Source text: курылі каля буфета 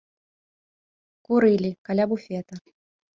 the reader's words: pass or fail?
pass